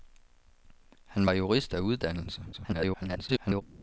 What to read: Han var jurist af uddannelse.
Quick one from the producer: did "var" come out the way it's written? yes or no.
yes